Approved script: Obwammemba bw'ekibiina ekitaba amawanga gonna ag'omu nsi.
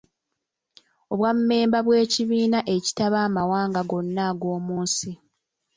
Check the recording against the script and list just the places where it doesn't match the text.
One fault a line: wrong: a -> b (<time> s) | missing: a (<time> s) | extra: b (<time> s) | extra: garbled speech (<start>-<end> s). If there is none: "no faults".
no faults